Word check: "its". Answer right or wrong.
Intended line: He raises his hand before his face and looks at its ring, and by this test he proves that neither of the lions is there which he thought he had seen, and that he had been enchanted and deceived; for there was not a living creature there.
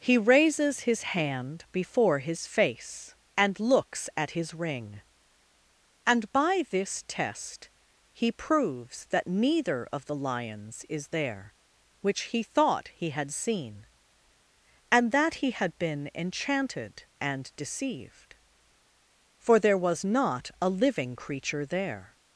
wrong